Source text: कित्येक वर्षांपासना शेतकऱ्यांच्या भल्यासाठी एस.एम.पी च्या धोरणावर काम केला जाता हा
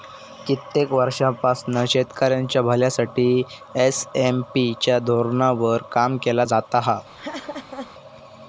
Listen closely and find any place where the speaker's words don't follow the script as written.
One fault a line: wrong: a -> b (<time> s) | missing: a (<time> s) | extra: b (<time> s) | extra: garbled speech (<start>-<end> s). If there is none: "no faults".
no faults